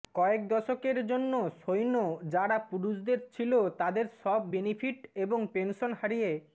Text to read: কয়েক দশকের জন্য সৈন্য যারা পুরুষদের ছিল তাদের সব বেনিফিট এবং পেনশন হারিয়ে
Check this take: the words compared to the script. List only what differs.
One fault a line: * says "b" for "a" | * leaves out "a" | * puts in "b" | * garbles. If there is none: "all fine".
all fine